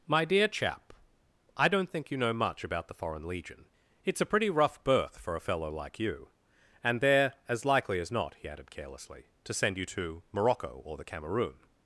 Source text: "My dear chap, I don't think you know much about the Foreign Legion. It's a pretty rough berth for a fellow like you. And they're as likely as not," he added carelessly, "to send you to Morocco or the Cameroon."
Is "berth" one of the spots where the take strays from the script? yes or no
no